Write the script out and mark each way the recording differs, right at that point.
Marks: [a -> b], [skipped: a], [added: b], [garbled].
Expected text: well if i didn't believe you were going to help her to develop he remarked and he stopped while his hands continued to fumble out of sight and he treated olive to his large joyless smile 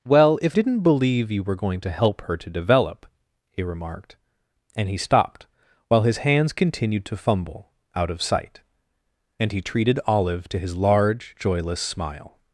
well if [skipped: i] didn't believe you were going to help her to develop he remarked and he stopped while his hands continued to fumble out of sight and he treated olive to his large joyless smile